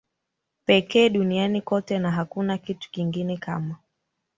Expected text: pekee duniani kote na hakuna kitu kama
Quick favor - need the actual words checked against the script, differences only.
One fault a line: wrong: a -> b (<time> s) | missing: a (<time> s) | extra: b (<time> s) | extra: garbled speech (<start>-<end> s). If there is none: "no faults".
extra: kingine (2.9 s)